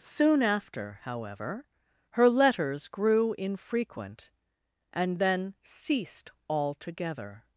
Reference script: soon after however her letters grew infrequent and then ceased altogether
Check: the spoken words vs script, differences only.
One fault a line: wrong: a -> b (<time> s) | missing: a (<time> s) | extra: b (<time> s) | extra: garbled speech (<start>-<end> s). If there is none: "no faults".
no faults